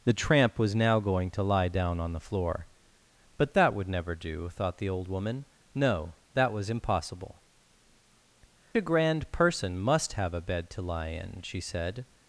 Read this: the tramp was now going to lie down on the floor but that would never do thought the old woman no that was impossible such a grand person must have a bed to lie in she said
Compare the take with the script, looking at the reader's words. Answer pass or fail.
fail